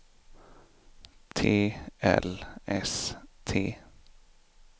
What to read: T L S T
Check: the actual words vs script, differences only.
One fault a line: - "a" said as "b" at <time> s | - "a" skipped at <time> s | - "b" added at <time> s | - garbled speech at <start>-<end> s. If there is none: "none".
none